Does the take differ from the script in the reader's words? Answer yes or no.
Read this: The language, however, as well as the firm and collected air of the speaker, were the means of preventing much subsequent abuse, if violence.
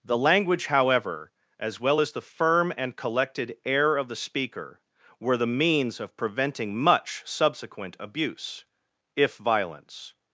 no